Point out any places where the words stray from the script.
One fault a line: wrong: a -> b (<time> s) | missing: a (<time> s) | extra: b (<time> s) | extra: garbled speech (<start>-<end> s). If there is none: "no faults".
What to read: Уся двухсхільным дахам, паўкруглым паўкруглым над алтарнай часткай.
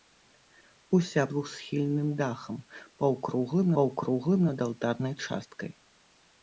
no faults